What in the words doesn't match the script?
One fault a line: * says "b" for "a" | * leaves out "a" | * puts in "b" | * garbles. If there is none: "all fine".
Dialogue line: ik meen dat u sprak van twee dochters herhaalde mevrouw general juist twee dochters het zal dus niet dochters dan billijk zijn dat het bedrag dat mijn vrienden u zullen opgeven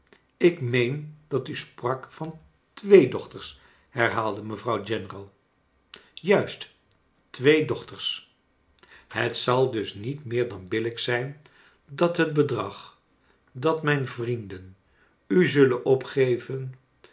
* says "meer" for "dochters"